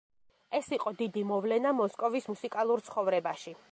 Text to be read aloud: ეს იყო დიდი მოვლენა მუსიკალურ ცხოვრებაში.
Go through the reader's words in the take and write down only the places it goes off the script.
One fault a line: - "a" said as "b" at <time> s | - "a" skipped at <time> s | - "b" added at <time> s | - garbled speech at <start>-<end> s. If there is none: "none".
- "მოსკოვის" added at 1.8 s